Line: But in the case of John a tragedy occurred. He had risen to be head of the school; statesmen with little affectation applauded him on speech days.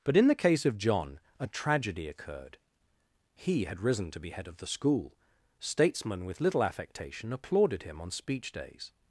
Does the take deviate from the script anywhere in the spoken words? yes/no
no